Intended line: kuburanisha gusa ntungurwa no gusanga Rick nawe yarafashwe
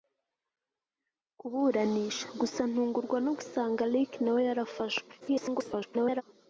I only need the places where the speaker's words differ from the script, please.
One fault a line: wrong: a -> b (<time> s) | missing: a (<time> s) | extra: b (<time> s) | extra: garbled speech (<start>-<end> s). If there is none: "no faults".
extra: garbled speech (5.2-6.2 s)